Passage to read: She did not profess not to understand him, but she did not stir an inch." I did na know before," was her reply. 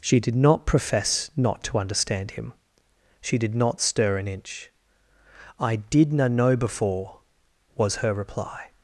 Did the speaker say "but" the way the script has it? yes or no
no